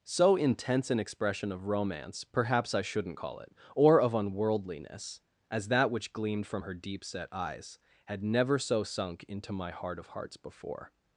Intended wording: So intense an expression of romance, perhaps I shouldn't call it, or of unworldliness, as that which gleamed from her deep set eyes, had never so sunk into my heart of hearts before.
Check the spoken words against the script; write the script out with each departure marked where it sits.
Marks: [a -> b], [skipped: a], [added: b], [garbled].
So intense an expression of romance, perhaps I shouldn't call it, or of unworldliness, as that which gleamed from her deep set eyes, had never so sunk into my heart of hearts before.